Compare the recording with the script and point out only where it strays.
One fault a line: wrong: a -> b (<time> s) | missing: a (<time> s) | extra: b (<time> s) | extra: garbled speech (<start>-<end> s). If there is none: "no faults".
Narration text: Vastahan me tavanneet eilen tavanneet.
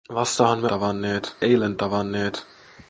no faults